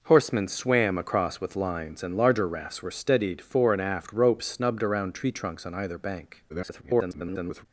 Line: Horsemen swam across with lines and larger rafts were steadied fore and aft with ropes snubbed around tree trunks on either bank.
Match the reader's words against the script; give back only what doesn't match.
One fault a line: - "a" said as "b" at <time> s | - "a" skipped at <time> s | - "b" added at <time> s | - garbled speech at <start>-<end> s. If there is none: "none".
- "with" skipped at 4.2 s
- garbled speech at 6.5-7.7 s